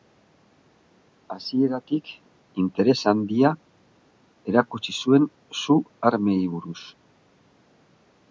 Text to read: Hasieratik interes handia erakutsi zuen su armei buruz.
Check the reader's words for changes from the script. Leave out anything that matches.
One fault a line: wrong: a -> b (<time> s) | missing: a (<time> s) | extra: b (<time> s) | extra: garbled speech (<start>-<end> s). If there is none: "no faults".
no faults